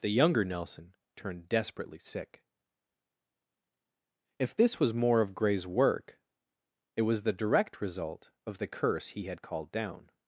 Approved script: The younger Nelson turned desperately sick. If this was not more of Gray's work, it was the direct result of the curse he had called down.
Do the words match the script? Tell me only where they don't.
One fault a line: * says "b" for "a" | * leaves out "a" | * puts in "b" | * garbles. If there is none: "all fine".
* leaves out "not"